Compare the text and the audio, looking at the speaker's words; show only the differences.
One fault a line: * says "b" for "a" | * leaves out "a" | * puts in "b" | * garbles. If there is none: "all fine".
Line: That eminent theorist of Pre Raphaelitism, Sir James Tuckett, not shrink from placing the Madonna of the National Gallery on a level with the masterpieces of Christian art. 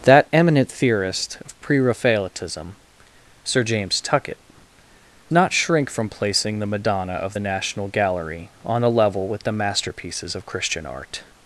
all fine